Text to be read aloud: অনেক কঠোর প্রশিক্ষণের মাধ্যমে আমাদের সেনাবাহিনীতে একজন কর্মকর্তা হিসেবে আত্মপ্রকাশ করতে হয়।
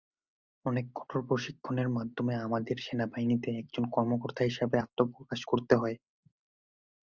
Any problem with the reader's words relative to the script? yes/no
no